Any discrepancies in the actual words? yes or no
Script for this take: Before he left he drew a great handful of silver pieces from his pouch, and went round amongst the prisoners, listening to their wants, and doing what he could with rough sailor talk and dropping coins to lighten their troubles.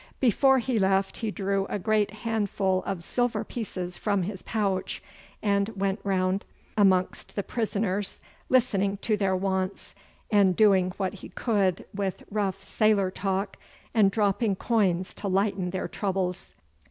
no